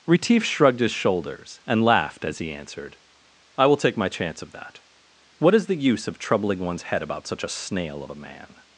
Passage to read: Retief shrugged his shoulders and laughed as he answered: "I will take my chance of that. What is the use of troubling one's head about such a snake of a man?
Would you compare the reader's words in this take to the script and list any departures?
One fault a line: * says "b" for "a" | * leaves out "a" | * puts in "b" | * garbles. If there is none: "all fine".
* says "snail" for "snake"